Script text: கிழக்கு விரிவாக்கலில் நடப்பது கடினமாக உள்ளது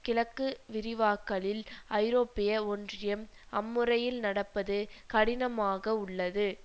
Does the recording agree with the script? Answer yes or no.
no